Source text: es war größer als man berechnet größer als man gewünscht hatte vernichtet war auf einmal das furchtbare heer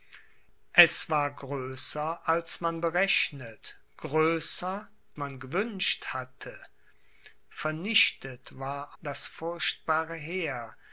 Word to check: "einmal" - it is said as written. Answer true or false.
false